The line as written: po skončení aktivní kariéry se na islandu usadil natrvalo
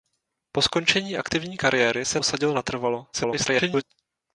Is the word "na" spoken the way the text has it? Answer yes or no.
no